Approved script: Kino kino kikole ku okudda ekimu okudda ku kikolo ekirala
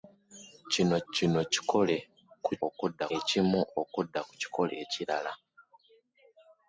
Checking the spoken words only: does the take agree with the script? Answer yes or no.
yes